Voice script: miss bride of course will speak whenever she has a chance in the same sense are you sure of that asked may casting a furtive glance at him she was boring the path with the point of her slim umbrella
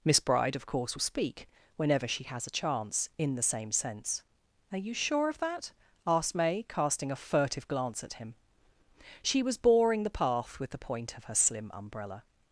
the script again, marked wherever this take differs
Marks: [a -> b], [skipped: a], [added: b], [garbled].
miss bride of course will speak whenever she has a chance in the same sense are you sure of that asked may casting a furtive glance at him she was boring the path with the point of her slim umbrella